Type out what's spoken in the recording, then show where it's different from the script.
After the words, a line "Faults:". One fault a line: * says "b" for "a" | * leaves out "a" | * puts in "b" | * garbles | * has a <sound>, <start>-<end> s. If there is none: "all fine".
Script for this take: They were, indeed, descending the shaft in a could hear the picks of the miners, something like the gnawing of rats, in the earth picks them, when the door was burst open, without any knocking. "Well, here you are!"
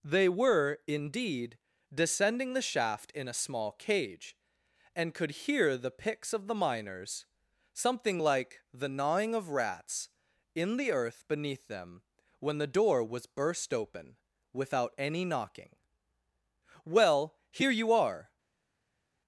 They were, indeed, descending the shaft in a small cage, and could hear the picks of the miners, something like the gnawing of rats, in the earth beneath them, when the door was burst open, without any knocking. "Well, here you are!"
Faults:
* puts in "small cage and"
* says "beneath" for "picks"